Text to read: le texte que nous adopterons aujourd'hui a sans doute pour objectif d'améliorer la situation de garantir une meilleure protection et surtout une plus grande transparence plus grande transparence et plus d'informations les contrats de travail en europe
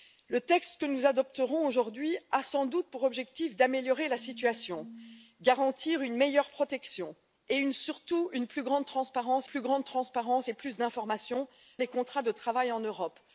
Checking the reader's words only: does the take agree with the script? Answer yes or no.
yes